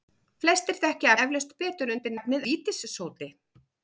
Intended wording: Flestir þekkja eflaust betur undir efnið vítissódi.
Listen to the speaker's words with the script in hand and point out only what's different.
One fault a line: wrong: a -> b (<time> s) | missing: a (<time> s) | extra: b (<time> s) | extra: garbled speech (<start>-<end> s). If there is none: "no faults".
no faults